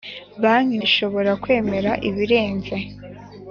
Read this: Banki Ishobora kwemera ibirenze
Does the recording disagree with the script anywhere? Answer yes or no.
no